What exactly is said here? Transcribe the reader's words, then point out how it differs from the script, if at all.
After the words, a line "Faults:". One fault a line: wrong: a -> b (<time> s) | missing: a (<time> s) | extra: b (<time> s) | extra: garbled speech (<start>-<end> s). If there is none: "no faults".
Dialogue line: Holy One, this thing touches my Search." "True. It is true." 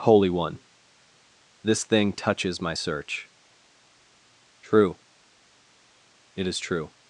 Holy One, this thing touches my Search." "True. It is true."
Faults:
no faults